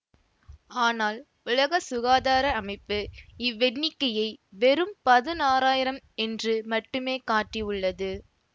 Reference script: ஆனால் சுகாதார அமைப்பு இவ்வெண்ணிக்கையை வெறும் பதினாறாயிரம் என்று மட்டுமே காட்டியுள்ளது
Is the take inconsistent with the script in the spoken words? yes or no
yes